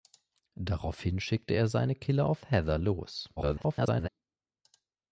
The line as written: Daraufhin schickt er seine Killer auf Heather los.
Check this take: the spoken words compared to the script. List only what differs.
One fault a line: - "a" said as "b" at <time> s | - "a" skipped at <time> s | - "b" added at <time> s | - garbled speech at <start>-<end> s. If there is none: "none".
- garbled speech at 3.4-4.1 s